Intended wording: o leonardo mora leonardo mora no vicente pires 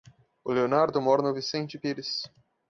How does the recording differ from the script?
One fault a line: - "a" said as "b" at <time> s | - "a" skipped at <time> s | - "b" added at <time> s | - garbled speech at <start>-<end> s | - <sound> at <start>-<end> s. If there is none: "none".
- "leonardo mora" skipped at 1.2 s